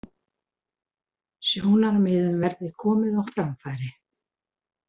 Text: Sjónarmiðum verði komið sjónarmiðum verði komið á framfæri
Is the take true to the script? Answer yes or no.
no